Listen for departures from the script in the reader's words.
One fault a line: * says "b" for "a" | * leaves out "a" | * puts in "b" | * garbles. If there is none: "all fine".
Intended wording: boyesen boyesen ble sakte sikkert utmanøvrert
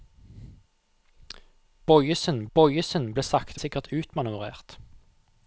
all fine